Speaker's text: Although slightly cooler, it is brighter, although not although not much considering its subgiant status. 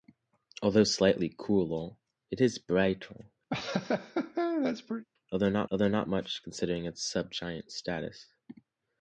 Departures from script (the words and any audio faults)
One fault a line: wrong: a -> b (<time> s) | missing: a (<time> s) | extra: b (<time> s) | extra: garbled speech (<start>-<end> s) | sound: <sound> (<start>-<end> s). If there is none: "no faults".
sound: laugh (3.5-5.1 s)